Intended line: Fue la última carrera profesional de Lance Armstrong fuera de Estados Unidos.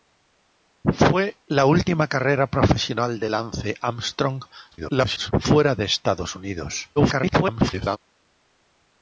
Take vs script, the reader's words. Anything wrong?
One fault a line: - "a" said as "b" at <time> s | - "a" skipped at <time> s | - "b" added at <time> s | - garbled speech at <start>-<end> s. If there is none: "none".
- garbled speech at 4.7-5.3 s
- garbled speech at 7.0-8.0 s